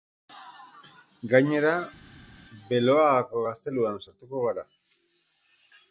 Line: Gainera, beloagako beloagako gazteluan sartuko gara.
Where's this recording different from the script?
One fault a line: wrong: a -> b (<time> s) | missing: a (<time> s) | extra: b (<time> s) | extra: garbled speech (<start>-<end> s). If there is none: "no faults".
missing: beloagako (3.4 s)